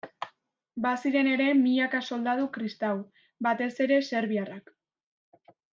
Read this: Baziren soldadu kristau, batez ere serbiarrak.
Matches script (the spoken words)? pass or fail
fail